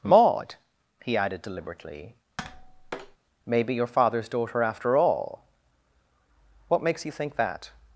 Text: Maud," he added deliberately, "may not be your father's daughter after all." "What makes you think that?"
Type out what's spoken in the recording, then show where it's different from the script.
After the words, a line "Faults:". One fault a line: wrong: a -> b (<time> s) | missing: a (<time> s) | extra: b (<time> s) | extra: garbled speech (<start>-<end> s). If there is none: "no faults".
Maud," he added deliberately, "may be your father's daughter after all." "What makes you think that?"
Faults:
missing: not (3.6 s)